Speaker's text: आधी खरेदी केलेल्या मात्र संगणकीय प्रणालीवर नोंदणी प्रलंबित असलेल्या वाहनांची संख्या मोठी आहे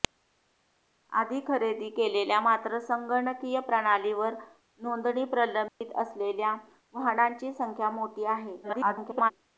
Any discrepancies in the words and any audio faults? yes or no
yes